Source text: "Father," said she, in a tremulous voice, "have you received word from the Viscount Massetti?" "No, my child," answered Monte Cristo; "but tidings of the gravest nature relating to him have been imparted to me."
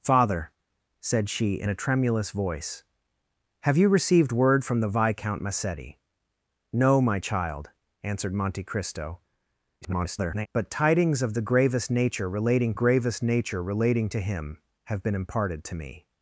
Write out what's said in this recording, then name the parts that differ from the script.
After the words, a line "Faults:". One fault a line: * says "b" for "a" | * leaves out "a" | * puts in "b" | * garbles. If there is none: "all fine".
"Father," said she, in a tremulous voice, "have you received word from the Viscount Massetti?" "No, my child," answered Monte Cristo; [garbled] "but tidings of the gravest nature relating gravest nature relating to him have been imparted to me."
Faults:
* garbles
* puts in "gravest nature relating"